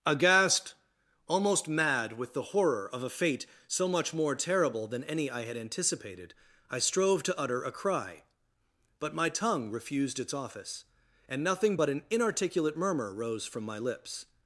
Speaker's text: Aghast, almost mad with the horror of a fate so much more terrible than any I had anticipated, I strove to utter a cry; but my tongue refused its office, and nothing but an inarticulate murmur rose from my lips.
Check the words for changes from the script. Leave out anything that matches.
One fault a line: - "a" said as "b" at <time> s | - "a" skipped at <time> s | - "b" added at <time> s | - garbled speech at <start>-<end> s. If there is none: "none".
none